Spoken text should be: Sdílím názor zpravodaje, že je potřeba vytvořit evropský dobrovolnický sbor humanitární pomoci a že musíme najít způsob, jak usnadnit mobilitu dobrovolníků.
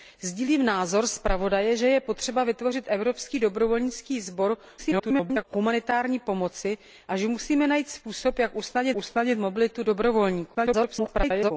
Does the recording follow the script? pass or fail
fail